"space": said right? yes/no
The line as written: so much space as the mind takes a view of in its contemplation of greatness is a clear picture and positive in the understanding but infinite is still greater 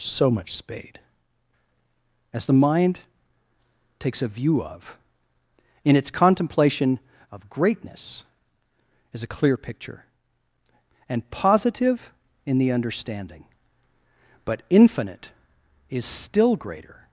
no